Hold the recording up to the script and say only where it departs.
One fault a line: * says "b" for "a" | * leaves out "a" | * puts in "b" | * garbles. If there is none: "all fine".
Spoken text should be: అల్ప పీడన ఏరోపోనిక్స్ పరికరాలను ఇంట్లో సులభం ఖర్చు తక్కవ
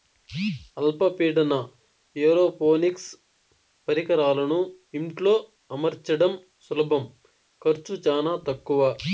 * puts in "అమర్చడం"
* puts in "చానా"